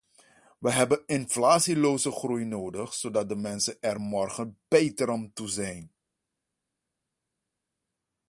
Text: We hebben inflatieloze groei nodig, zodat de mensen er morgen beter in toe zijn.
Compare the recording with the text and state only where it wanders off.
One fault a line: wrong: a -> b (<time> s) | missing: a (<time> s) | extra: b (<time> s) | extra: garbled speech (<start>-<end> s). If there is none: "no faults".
wrong: in -> aan (5.1 s)